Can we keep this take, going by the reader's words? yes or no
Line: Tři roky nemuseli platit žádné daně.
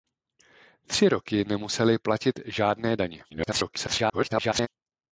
no